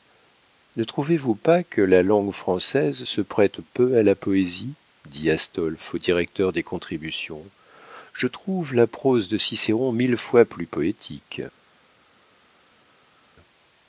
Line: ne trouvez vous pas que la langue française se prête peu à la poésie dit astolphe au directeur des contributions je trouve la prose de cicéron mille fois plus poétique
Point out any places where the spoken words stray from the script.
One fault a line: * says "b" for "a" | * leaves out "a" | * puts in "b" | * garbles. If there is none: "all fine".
all fine